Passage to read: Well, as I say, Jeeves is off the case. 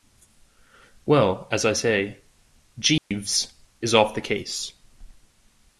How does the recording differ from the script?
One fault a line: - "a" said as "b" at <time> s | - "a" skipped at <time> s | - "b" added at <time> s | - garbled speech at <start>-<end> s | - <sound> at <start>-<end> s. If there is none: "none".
- dropout at 3.0-3.1 s